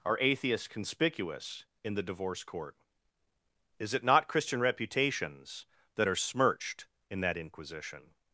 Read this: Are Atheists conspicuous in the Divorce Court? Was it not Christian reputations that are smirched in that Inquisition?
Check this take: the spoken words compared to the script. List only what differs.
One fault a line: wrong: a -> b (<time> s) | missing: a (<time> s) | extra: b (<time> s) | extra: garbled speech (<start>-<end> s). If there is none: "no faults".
wrong: Was -> Is (3.8 s)